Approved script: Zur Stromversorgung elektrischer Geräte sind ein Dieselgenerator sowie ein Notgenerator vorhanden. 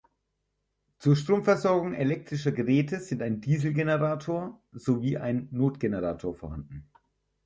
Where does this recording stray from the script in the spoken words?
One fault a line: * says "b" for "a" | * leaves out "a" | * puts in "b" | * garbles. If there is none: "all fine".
all fine